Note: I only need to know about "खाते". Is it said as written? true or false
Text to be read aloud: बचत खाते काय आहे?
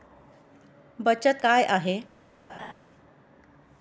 false